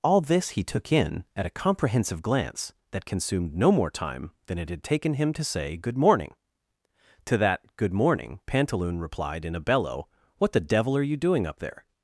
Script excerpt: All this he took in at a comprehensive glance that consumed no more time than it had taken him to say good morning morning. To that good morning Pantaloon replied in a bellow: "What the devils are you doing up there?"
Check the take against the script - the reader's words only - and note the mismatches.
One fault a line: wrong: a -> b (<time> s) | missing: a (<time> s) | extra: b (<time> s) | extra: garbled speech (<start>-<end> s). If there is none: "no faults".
missing: morning (6.3 s)
wrong: devils -> devil (10.6 s)